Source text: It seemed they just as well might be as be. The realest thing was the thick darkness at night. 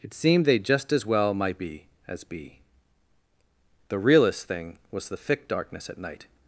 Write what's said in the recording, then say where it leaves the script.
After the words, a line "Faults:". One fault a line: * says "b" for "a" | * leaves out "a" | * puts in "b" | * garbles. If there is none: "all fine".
It seemed they just as well might be as be. The realest thing was the thick darkness at night.
Faults:
all fine